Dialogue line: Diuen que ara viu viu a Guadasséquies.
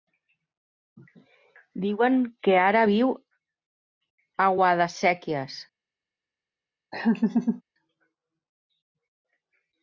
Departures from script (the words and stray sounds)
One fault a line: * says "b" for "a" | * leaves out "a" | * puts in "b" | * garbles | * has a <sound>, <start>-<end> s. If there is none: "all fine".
* leaves out "viu"
* has a laugh, 6.9-7.6 s